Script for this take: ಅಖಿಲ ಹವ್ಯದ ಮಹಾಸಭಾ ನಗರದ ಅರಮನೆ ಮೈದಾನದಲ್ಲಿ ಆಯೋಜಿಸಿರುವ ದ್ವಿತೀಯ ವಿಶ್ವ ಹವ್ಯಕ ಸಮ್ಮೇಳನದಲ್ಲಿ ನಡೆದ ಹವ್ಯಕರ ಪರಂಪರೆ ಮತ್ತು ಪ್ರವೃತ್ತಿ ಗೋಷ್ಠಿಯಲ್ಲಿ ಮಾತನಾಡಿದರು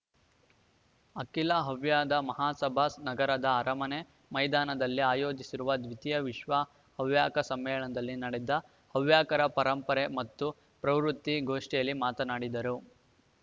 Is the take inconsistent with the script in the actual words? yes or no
no